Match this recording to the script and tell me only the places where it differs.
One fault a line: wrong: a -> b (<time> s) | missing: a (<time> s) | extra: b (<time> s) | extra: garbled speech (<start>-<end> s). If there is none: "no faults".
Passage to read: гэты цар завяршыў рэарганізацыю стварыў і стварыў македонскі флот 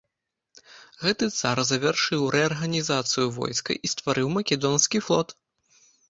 wrong: стварыў -> войска (3.4 s)